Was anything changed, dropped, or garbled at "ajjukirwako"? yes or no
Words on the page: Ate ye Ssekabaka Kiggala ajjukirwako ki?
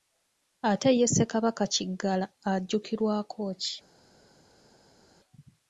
no